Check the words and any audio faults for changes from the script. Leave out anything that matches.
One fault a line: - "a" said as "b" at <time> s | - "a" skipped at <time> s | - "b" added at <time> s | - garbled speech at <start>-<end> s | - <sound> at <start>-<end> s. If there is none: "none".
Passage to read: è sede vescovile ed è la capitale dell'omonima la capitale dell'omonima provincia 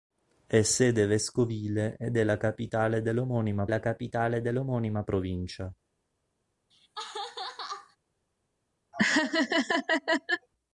- laugh at 6.7-8.0 s
- laugh at 8.9-10.5 s